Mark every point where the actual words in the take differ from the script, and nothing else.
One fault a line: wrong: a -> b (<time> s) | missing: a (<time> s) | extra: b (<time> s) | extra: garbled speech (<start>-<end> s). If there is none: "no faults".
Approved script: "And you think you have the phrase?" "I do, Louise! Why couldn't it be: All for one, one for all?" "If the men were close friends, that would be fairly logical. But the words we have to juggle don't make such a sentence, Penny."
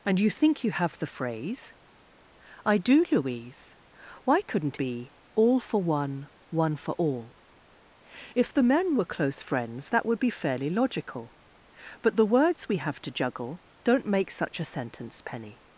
missing: it (4.8 s)